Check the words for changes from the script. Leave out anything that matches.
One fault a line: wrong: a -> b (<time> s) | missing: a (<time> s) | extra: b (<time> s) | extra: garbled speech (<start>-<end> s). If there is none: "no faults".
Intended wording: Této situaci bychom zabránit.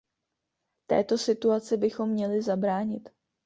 extra: měli (2.1 s)